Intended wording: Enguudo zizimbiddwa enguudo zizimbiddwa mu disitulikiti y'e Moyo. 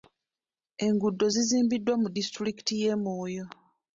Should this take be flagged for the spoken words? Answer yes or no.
yes